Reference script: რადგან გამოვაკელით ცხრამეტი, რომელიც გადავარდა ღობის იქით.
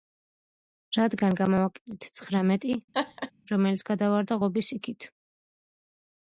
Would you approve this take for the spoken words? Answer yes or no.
yes